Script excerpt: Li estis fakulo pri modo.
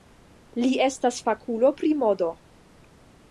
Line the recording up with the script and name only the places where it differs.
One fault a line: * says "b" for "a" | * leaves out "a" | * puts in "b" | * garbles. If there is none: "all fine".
* says "estas" for "estis"